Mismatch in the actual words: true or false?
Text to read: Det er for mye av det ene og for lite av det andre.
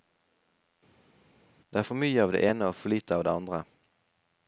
false